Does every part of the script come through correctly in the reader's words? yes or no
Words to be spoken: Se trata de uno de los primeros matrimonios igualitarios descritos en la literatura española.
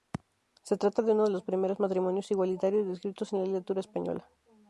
yes